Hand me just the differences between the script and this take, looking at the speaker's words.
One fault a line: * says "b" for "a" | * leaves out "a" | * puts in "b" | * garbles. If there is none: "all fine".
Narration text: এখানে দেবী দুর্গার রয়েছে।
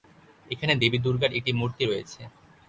* puts in "একটি মূর্তি"